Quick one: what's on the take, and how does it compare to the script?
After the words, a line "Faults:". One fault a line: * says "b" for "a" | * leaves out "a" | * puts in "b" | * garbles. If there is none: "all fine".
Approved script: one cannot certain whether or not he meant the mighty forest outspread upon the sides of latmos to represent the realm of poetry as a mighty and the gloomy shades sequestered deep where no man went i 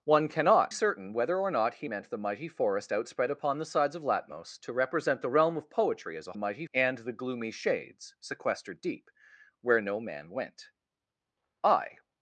one cannot certain whether or not he meant the mighty forest outspread upon the sides of latmos to represent the realm of poetry as a mighty and the gloomy shades sequestered deep where no man went i
Faults:
all fine